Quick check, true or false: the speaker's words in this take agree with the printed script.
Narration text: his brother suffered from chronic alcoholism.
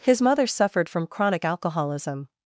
false